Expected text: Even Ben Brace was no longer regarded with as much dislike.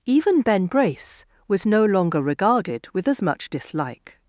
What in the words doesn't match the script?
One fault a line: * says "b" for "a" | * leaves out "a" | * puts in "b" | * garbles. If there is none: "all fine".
all fine